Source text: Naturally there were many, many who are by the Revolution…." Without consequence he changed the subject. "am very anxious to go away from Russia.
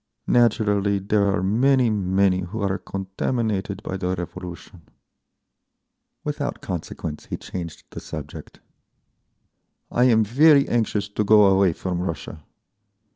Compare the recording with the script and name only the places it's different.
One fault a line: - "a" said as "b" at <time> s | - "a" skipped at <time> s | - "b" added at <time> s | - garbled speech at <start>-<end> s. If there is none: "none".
- "were" said as "are" at 1.3 s
- "contaminated" added at 2.8 s
- "I" added at 9.9 s